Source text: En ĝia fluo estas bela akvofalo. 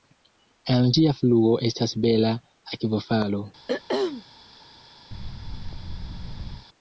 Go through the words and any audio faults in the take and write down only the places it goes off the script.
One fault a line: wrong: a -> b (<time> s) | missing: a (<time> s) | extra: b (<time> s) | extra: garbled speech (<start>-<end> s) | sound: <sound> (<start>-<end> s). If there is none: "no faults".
sound: throat clearing (3.7-4.2 s)
sound: thud (5.1-6.7 s)